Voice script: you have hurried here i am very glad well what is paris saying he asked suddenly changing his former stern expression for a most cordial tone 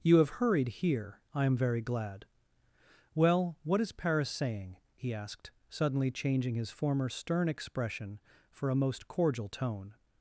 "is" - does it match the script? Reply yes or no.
yes